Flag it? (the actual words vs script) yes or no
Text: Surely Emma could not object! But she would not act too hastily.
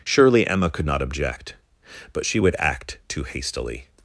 yes